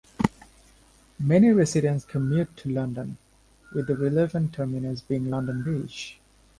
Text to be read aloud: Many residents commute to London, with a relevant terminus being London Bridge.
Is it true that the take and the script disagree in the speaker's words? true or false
true